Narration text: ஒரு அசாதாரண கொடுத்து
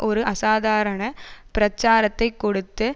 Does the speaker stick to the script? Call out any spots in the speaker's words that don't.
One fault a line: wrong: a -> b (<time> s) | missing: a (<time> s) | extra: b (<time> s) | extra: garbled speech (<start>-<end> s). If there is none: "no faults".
extra: பிரச்சாரத்தை (1.5 s)